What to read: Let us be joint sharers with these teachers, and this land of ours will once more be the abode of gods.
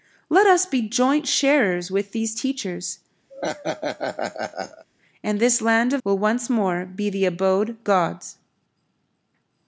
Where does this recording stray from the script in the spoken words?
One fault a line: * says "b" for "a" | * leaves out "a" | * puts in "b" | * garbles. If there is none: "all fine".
* leaves out "ours"
* leaves out "of"